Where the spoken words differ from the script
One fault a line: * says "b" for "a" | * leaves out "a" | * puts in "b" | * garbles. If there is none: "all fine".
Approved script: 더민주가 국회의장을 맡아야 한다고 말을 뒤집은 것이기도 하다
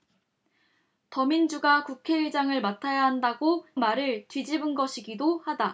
all fine